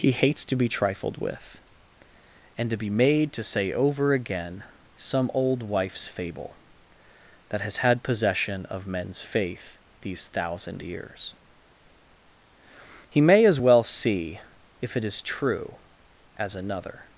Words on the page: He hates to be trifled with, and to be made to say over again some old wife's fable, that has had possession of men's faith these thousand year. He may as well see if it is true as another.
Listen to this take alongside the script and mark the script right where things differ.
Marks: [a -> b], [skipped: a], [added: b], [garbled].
He hates to be trifled with, and to be made to say over again some old wife's fable, that has had possession of men's faith these thousand [year. -> years] He may as well see if it is true as another.